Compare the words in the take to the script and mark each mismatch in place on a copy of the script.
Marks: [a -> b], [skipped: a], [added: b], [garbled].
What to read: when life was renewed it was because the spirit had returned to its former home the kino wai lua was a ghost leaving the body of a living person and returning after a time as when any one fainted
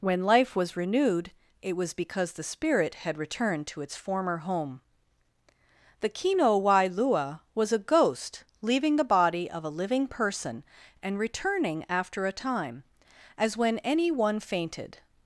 when life was renewed it was because the spirit had returned to its former home the kino wai lua was a ghost leaving the body of a living person and returning after a time as when any one fainted